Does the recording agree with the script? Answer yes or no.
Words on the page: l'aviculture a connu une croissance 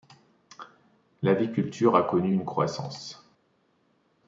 yes